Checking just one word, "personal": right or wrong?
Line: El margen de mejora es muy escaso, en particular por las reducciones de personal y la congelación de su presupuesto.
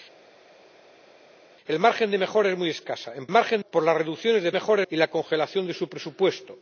wrong